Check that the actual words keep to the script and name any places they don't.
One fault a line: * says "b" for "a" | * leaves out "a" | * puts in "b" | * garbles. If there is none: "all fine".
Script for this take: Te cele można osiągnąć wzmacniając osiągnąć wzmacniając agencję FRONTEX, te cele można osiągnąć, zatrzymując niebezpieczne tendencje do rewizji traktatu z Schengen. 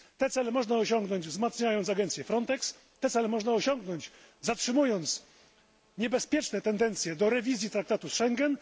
* leaves out "osiągnąć wzmacniając"